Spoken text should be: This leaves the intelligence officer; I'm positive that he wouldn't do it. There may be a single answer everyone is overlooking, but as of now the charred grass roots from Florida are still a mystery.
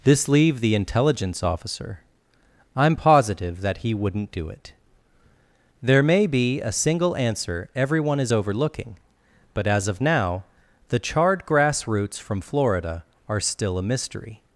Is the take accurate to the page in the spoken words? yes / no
no